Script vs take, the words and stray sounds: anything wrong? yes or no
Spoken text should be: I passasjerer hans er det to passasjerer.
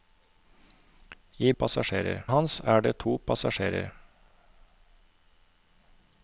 no